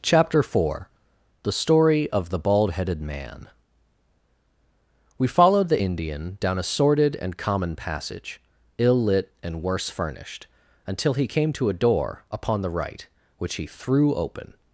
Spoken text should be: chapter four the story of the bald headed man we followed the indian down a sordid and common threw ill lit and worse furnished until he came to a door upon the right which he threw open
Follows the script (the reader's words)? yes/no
no